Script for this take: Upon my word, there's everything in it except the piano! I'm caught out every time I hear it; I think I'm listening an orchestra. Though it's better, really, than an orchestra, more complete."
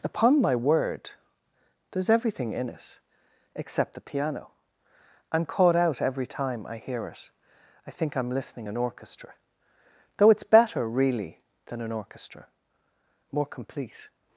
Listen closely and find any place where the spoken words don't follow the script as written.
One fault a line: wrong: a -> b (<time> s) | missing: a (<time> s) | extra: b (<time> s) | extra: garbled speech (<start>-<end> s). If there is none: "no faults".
no faults